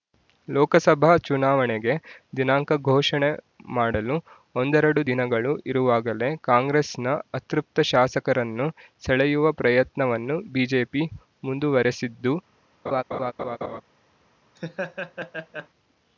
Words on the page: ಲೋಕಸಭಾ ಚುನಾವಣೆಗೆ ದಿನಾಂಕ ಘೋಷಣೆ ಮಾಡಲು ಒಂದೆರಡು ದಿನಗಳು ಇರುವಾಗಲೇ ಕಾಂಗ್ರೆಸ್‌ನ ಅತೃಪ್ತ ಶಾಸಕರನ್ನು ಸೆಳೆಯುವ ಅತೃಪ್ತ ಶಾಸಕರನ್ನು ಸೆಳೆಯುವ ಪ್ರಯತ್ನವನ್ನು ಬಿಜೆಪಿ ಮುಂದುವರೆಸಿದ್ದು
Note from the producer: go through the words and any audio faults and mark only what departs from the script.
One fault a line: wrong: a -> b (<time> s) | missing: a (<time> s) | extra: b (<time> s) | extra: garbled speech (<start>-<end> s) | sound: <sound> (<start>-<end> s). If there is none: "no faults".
missing: ಅತೃಪ್ತ ಶಾಸಕರನ್ನು ಸೆಳೆಯುವ (9.5 s)
sound: laugh (12.9-13.8 s)
sound: laugh (14.6-15.7 s)